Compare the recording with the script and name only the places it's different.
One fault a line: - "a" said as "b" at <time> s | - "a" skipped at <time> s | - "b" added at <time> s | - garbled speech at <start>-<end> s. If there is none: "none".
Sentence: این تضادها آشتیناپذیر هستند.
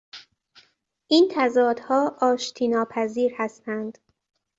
none